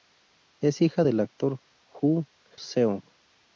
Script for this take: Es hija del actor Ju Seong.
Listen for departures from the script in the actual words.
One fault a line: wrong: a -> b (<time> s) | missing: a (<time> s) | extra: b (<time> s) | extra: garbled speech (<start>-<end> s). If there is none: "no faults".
no faults